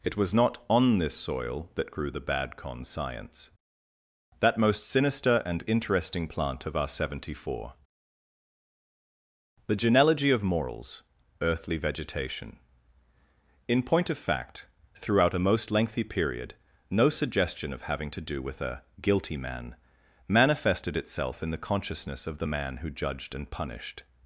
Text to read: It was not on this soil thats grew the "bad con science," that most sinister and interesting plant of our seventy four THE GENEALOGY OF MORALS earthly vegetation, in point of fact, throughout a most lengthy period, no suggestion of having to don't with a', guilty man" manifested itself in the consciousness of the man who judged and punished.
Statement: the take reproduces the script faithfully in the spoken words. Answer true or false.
false